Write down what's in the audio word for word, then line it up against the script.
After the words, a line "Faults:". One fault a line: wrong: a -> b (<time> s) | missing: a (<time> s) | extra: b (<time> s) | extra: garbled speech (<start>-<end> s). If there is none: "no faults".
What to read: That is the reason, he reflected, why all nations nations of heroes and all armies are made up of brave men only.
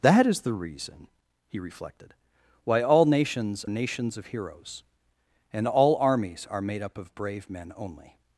That is the reason, he reflected, why all nations nations of heroes and all armies are made up of brave men only.
Faults:
no faults